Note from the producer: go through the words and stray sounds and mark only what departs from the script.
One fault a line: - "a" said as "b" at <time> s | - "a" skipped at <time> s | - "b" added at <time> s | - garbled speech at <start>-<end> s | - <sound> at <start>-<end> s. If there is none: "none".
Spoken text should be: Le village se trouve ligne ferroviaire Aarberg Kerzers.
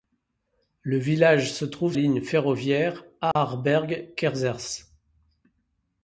- dropout at 3.3-3.4 s